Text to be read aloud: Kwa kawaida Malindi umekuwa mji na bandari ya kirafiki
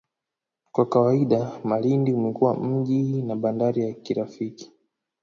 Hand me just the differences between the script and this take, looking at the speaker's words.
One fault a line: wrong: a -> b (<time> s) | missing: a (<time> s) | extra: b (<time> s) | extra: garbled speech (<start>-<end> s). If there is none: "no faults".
no faults